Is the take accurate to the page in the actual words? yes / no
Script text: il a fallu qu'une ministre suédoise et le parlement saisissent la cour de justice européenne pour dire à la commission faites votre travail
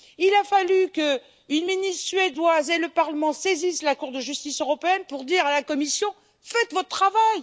yes